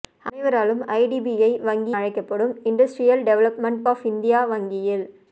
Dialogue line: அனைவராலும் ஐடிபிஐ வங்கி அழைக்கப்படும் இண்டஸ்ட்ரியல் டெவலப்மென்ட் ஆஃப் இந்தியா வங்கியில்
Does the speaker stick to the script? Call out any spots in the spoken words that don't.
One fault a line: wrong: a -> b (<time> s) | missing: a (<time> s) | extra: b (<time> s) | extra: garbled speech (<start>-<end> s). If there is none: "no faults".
no faults